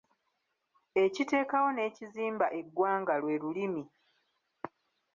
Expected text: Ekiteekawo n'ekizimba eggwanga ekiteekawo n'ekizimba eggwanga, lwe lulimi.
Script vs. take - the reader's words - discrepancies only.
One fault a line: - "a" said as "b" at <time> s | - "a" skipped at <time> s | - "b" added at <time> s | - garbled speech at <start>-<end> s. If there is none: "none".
- "ekiteekawo n'ekizimba eggwanga" skipped at 3.1 s